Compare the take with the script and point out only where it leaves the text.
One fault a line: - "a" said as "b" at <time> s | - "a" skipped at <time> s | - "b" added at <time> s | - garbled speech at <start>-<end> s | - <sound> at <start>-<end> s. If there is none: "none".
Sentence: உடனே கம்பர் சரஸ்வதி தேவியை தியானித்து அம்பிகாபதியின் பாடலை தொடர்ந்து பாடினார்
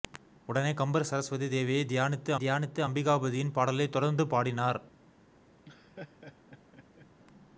- "தியானித்து" added at 2.4 s
- laugh at 5.6-7.1 s